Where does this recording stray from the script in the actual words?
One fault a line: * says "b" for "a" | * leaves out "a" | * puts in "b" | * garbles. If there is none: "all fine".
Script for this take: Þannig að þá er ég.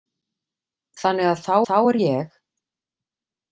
* puts in "þá"